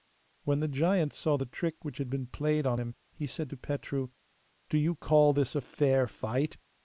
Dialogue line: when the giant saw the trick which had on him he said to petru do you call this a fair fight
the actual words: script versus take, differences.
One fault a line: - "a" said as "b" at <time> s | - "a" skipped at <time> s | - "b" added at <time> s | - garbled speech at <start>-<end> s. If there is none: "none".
- "been played" added at 2.1 s